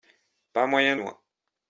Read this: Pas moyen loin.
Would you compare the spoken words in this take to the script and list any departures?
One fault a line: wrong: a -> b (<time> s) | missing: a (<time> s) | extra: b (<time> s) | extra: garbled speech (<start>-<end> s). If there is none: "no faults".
no faults